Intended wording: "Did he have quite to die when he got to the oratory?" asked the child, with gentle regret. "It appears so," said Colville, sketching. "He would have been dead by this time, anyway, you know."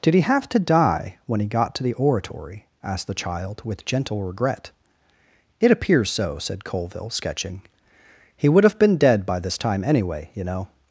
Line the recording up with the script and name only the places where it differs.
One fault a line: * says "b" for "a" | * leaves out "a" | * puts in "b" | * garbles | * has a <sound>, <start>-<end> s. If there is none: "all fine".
* leaves out "quite"